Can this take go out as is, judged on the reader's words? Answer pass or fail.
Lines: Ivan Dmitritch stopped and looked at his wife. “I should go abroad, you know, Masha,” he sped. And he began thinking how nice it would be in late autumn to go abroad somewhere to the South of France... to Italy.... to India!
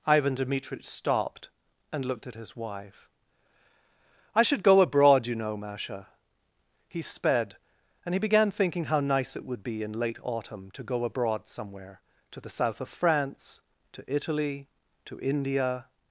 pass